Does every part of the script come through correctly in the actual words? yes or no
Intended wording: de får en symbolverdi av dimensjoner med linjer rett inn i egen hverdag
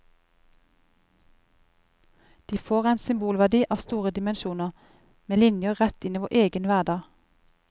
no